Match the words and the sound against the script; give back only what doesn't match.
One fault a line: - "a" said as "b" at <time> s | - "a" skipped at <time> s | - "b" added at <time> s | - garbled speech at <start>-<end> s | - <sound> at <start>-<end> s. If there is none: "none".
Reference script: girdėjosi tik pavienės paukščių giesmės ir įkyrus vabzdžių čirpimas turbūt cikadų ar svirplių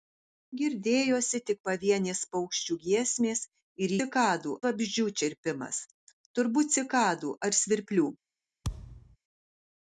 - "įkyrus" said as "cikadų" at 4.0 s
- thud at 8.6-9.2 s